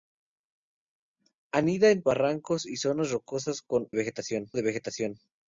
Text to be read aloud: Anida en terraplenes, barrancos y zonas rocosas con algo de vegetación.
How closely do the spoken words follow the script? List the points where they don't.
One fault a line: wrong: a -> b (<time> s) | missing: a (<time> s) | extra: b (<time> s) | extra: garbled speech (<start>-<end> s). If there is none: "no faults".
missing: terraplenes (2.0 s)
wrong: algo -> vegetación (3.9 s)